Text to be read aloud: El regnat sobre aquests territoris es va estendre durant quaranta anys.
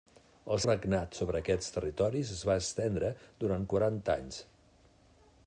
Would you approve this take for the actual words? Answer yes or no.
yes